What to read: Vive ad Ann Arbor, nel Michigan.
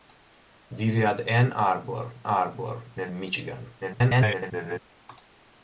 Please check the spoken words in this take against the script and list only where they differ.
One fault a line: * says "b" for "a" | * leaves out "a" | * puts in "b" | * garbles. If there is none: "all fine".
* puts in "Arbor"
* garbles